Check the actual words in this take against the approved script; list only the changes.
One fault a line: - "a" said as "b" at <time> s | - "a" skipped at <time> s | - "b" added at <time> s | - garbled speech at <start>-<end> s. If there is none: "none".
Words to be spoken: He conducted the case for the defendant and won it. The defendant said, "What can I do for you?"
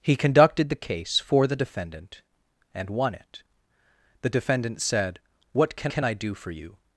- "can" added at 5.9 s